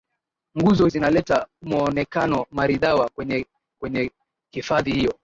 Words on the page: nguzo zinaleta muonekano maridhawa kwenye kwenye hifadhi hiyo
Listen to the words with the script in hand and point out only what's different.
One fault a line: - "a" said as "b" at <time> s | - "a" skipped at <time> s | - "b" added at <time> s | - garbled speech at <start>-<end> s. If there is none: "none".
none